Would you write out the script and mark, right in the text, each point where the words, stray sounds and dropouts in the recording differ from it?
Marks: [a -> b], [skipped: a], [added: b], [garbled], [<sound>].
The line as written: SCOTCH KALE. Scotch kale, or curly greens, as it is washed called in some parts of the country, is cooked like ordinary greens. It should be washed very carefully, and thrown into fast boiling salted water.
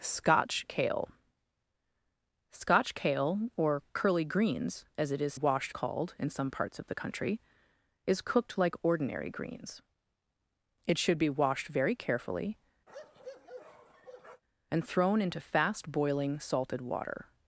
SCOTCH KALE. Scotch kale, or curly greens, as it is washed called in some parts of the country, is cooked like ordinary greens. It should be washed very carefully, [bark] and thrown into fast boiling salted water.